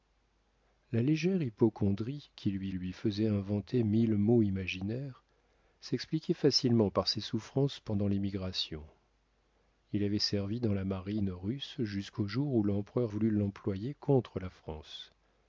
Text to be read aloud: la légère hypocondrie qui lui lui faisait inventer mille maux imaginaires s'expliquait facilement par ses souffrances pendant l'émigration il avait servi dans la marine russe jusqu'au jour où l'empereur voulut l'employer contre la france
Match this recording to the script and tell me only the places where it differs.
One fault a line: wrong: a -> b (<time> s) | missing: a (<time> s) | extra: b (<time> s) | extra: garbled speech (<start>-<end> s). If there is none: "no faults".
no faults